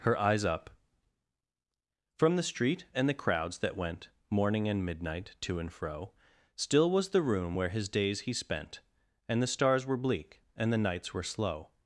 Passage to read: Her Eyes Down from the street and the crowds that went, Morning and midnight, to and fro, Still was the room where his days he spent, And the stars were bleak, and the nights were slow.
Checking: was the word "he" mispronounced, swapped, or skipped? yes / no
no